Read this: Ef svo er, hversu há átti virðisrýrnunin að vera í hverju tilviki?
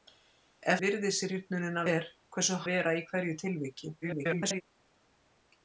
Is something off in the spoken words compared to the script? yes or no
yes